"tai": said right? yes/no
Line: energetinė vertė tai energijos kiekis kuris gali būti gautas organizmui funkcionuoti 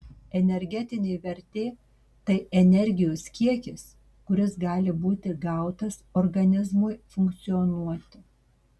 yes